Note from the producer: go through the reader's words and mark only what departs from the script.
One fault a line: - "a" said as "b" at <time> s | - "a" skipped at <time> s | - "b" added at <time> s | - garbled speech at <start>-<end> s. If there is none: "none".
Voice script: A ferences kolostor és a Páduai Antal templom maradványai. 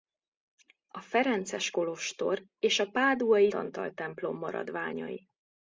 none